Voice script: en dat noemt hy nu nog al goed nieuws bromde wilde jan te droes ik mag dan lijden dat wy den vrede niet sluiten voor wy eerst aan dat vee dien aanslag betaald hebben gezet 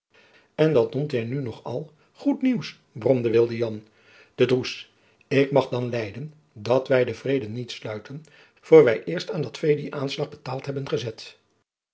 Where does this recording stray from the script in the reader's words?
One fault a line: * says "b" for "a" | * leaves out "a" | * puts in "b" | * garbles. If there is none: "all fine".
all fine